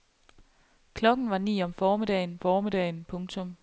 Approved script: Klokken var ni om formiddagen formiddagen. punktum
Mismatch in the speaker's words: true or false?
false